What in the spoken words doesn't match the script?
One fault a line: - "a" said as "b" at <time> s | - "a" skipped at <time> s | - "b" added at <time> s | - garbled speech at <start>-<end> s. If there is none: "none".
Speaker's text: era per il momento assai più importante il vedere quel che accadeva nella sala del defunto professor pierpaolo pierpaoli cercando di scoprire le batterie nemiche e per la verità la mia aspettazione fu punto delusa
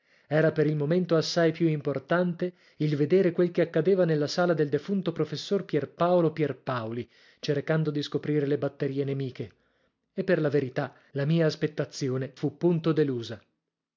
none